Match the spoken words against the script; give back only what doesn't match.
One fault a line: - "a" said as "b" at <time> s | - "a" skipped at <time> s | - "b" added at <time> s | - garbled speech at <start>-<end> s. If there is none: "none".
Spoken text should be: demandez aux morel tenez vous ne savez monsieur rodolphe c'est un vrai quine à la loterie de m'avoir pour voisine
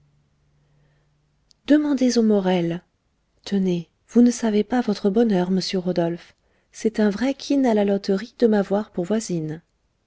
- "pas votre bonheur" added at 4.6 s